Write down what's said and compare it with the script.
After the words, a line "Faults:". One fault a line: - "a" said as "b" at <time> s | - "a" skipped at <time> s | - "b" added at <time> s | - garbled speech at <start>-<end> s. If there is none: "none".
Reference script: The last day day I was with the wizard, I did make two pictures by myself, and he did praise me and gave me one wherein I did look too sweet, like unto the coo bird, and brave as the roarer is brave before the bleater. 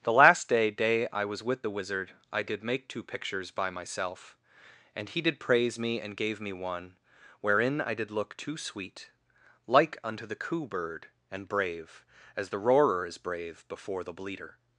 The last day day I was with the wizard, I did make two pictures by myself, and he did praise me and gave me one wherein I did look too sweet, like unto the coo bird, and brave as the roarer is brave before the bleater.
Faults:
none